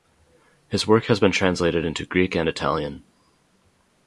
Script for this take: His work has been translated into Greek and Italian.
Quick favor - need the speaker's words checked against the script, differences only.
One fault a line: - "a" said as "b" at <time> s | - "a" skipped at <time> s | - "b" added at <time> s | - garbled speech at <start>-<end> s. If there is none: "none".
none